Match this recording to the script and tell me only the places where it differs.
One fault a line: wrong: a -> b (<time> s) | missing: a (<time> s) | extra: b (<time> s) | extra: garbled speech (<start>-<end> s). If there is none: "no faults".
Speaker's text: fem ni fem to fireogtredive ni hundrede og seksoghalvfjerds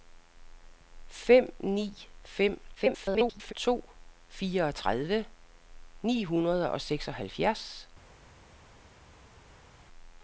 extra: garbled speech (2.7-3.5 s)